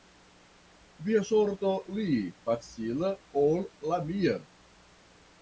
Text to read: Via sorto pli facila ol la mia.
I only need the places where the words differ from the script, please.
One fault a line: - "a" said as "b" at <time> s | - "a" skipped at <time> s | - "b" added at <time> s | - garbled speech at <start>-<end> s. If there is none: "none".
none